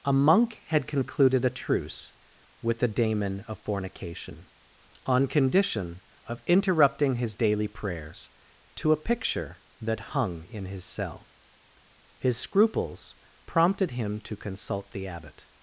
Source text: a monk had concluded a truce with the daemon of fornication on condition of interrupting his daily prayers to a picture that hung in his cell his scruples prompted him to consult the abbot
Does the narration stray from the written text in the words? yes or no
no